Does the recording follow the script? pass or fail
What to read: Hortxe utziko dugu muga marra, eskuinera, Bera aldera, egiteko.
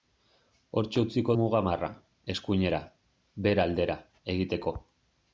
fail